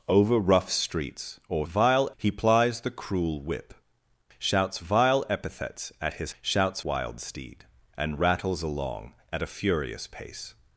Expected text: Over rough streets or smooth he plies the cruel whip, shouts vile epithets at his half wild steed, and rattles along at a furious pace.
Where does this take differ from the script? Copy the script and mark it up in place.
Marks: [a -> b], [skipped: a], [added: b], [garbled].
Over rough streets or [smooth -> vile] he plies the cruel whip, shouts vile epithets at his [half -> shouts] wild steed, and rattles along at a furious pace.